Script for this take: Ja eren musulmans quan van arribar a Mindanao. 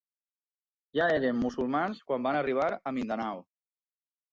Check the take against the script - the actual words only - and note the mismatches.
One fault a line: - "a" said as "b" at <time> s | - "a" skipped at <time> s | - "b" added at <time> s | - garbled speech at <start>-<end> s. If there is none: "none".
none